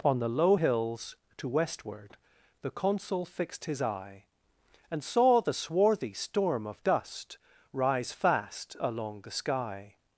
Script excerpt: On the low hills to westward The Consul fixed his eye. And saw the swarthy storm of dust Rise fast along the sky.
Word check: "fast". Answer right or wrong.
right